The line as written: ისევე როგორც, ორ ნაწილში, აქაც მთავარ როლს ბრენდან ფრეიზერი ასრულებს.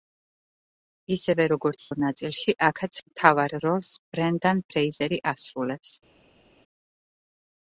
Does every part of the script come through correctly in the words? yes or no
yes